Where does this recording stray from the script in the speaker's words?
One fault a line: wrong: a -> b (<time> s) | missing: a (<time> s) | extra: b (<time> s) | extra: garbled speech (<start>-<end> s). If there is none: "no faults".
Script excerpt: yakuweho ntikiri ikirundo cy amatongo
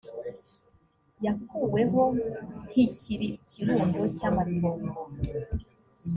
no faults